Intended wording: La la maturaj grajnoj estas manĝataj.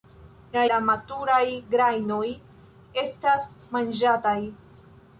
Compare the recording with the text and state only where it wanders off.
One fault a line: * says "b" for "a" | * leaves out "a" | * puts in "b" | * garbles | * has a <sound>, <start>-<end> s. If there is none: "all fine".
all fine